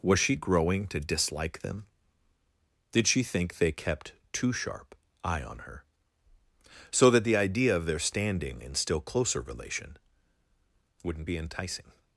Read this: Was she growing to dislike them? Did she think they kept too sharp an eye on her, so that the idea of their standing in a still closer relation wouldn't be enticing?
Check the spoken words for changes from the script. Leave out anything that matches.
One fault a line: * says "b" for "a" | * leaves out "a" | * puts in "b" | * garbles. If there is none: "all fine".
* leaves out "an"
* leaves out "a"